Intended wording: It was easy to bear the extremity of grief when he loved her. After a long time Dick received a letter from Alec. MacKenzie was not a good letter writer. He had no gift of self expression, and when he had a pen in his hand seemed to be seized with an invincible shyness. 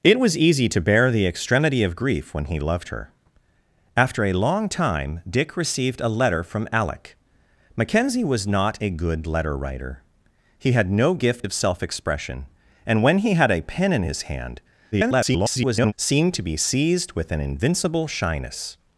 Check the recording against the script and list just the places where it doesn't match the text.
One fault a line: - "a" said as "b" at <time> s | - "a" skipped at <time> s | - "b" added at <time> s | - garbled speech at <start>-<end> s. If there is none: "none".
- garbled speech at 14.9-15.9 s